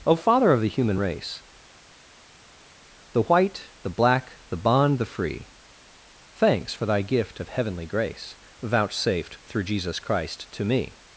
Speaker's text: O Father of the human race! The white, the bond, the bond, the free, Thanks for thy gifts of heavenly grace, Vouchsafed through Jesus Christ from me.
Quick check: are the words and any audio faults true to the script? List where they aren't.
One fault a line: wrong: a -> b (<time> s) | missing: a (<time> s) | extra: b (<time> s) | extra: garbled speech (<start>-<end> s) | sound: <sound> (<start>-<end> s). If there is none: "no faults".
wrong: bond -> black (3.9 s)
wrong: gifts -> gift (7.0 s)
wrong: from -> to (10.5 s)